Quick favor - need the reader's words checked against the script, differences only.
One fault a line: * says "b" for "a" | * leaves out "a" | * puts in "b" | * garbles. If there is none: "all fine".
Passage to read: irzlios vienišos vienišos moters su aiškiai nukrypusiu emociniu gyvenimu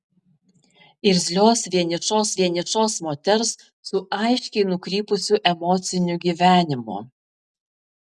all fine